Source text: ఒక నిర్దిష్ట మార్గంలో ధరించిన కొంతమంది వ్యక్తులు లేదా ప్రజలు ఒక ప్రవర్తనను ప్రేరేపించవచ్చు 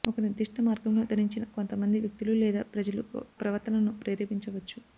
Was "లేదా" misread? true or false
false